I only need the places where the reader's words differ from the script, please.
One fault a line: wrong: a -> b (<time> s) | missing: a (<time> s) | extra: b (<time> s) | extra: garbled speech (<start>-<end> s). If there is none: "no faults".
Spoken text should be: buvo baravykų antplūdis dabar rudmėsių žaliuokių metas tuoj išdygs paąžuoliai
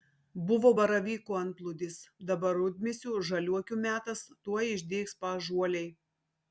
no faults